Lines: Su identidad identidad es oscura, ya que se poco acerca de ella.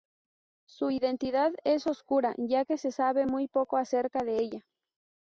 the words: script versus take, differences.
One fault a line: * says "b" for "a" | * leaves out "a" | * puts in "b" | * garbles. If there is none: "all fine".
* leaves out "identidad"
* puts in "sabe muy"